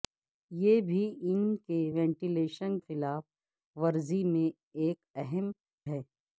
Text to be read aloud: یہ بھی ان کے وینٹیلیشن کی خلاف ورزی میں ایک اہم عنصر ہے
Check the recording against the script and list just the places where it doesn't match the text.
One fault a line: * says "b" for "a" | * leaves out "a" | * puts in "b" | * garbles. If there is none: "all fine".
* leaves out "کی"
* leaves out "عنصر"